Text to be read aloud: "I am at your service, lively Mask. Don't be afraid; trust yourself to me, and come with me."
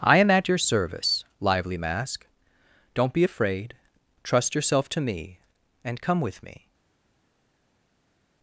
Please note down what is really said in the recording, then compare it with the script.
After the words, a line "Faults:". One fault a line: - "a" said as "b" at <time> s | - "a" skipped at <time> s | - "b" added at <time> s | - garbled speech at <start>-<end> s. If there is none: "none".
"I am at your service, lively Mask. Don't be afraid; trust yourself to me, and come with me."
Faults:
none